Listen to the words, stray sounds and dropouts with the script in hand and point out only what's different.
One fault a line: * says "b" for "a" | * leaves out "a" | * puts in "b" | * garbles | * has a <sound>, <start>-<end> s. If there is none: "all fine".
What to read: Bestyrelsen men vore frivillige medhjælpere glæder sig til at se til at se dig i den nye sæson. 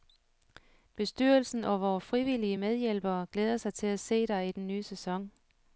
* says "og" for "men"
* leaves out "til at se"